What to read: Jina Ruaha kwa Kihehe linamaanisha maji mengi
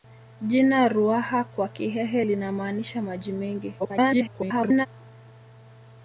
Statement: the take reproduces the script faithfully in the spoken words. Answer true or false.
false